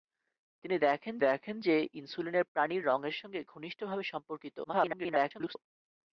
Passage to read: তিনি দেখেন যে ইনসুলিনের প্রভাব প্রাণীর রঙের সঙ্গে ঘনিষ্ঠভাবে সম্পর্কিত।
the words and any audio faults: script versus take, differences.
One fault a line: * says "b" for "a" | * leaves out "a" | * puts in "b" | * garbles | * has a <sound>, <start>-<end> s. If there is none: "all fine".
* puts in "দেখেন"
* leaves out "প্রভাব"
* garbles